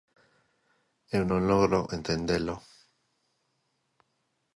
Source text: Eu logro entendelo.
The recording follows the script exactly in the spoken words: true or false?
false